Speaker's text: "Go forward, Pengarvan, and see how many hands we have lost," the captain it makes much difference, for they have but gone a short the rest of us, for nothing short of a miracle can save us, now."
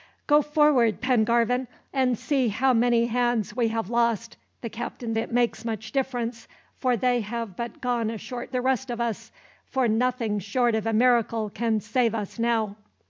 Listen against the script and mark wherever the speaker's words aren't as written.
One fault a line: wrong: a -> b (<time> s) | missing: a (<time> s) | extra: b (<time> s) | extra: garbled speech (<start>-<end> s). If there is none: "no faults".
no faults